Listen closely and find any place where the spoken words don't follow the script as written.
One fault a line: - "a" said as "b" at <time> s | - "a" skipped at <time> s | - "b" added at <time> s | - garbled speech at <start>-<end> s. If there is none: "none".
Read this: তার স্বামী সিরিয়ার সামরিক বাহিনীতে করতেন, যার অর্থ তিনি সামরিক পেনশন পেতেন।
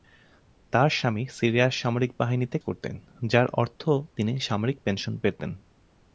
none